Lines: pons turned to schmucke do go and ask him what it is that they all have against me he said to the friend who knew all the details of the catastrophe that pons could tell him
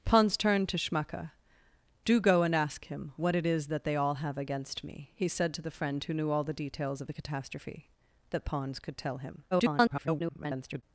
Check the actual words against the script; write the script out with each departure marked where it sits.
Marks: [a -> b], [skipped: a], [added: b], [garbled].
pons turned to schmucke do go and ask him what it is that they all have against me he said to the friend who knew all the details of the catastrophe that pons could tell him [garbled]